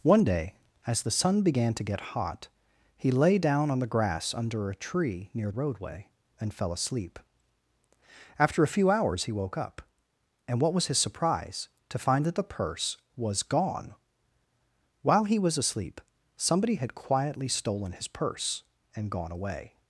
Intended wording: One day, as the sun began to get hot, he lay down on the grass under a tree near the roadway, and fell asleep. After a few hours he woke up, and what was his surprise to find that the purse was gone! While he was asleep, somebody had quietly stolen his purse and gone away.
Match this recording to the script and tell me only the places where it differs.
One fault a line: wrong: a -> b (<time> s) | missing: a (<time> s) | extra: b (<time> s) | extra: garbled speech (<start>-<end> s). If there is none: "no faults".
missing: the (5.5 s)